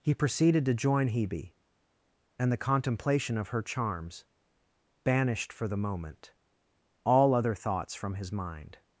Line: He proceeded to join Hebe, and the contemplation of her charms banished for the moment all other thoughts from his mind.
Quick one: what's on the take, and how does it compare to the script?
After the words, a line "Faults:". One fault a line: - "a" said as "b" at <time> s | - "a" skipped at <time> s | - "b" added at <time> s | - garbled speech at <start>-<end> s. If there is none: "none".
He proceeded to join Hebe, and the contemplation of her charms banished for the moment all other thoughts from his mind.
Faults:
none